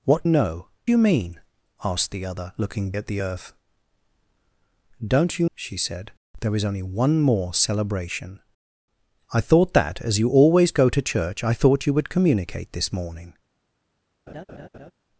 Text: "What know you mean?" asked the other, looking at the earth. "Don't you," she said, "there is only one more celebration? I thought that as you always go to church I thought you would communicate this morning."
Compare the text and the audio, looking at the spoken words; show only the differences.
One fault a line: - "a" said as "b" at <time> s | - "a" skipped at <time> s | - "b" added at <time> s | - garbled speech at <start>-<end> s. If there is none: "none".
none